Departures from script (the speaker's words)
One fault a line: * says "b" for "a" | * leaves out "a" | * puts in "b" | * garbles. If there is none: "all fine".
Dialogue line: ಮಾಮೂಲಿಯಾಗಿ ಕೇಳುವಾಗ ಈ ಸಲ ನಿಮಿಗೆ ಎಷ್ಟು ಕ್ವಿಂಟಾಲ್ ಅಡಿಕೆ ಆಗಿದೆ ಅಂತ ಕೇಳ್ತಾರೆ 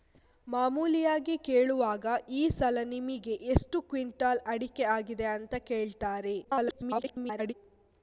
* garbles